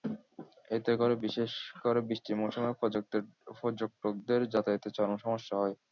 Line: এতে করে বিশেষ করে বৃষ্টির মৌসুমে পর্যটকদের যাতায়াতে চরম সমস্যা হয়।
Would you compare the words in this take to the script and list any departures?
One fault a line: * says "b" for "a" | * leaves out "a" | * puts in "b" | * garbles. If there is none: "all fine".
all fine